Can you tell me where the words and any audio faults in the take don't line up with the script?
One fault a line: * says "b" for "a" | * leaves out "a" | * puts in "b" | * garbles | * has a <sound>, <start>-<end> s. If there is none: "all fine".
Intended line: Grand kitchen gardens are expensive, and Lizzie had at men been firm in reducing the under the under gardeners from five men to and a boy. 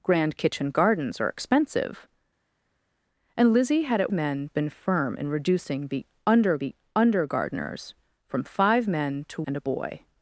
all fine